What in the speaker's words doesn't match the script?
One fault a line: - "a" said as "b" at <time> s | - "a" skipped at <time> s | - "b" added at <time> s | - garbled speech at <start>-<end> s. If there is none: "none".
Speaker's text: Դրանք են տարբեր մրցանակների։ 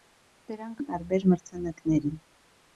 none